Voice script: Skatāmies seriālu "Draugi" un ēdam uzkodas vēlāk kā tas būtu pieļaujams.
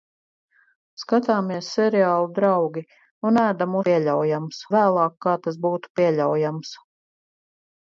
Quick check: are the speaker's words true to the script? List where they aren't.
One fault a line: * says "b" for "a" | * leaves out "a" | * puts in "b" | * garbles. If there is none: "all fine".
* says "pieļaujams" for "uzkodas"